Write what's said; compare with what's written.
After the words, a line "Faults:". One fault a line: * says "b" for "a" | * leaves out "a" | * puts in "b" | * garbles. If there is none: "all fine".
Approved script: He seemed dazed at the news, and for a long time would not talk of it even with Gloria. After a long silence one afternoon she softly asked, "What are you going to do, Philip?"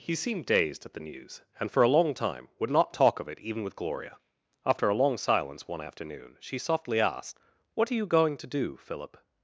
He seemed dazed at the news, and for a long time would not talk of it even with Gloria. After a long silence one afternoon she softly asked, "What are you going to do, Philip?"
Faults:
all fine